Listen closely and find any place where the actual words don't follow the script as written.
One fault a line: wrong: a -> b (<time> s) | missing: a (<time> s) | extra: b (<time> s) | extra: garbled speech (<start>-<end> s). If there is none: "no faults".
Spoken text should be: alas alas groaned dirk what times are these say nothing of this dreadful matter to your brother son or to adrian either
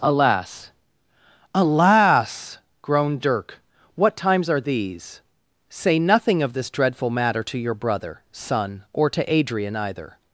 no faults